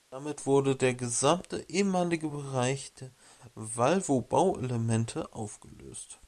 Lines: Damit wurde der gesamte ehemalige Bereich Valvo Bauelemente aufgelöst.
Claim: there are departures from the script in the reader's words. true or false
true